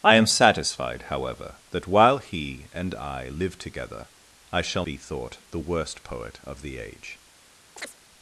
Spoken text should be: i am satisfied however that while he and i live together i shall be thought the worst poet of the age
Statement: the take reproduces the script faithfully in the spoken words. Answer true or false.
true